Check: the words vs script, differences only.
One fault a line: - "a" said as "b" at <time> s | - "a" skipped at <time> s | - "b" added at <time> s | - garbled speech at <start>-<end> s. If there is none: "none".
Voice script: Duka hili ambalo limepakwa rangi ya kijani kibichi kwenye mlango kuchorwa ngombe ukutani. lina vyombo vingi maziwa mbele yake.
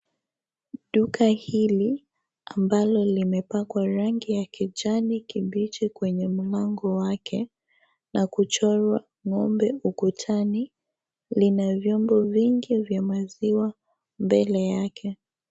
- "wake na" added at 7.0 s
- "vya" added at 12.8 s